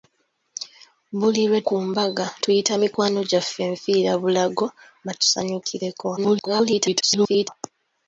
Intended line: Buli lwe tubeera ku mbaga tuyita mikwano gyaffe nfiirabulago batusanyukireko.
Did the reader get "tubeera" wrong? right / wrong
wrong